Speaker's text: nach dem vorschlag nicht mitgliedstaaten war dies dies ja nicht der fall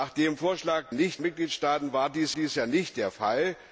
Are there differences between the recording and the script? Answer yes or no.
no